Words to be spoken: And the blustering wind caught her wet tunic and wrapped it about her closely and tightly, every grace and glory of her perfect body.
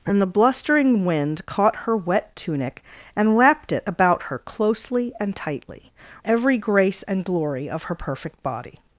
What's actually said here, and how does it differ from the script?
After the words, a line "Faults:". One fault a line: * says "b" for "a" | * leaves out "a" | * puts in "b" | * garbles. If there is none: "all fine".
And the blustering wind caught her wet tunic and wrapped it about her closely and tightly, every grace and glory of her perfect body.
Faults:
all fine